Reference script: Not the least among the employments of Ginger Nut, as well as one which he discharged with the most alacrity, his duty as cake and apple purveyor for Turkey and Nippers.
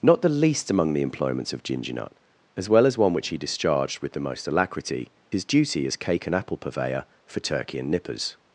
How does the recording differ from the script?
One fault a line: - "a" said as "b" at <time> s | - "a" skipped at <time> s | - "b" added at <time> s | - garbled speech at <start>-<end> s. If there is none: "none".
none